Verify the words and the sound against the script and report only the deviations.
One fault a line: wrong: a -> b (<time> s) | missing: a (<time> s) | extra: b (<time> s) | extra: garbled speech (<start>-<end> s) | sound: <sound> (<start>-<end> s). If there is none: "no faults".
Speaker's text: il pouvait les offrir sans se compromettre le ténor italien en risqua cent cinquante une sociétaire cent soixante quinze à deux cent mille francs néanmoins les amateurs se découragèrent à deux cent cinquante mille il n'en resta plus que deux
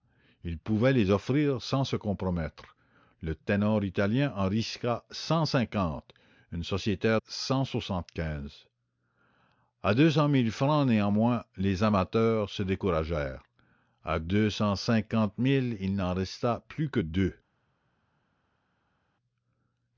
no faults